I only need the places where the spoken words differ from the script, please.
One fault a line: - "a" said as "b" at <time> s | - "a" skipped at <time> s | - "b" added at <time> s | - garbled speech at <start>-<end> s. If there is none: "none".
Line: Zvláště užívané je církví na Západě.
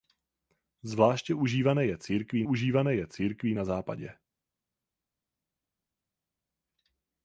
- "užívané je církví" added at 2.4 s